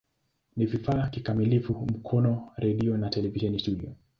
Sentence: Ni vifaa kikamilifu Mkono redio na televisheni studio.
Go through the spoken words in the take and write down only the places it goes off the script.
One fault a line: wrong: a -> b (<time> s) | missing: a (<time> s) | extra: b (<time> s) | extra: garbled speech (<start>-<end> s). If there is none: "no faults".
no faults